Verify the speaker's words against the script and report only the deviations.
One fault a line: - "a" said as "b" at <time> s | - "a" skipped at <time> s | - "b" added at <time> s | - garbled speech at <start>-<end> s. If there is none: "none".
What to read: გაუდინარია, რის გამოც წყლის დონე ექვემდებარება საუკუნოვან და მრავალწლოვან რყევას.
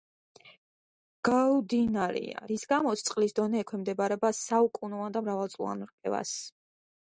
none